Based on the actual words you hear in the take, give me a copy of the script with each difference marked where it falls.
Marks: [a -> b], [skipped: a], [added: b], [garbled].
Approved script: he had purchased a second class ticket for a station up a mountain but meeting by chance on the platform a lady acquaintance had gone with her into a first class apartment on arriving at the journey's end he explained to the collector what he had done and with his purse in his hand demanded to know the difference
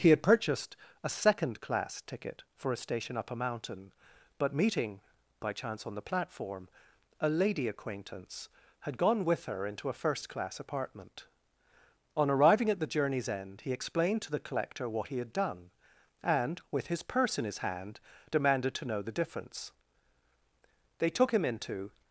he had purchased a second class ticket for a station up a mountain but meeting by chance on the platform a lady acquaintance had gone with her into a first class apartment on arriving at the journey's end he explained to the collector what he had done and with his purse in his hand demanded to know the difference [added: they took him into]